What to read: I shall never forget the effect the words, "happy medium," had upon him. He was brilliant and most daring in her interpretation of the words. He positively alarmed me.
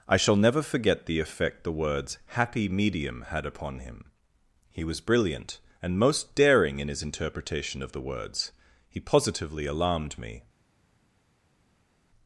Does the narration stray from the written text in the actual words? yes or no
yes